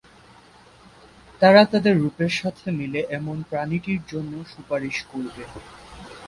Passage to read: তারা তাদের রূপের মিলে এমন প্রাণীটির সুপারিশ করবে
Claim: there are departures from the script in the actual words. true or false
true